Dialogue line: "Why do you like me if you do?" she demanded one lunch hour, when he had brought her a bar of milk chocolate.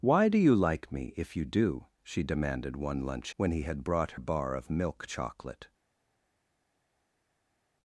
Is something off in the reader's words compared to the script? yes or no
yes